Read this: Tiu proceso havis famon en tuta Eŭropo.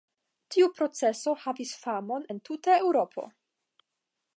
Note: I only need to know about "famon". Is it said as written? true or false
true